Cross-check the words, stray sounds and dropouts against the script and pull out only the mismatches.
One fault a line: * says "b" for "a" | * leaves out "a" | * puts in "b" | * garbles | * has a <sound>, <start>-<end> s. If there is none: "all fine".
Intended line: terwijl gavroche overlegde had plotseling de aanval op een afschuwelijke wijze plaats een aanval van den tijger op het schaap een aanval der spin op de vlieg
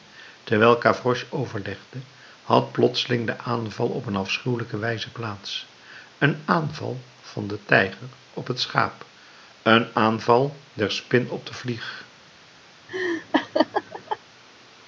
* has a laugh, 12.9-14.2 s